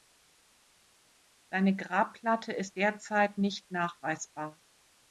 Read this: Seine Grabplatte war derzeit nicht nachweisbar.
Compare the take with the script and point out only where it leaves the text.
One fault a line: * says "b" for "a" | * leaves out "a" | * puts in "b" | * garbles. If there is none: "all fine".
* says "ist" for "war"